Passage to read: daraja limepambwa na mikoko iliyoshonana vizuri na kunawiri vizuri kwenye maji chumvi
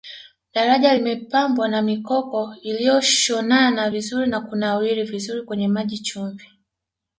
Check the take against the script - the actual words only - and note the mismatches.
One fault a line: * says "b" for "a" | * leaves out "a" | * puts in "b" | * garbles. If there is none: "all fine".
all fine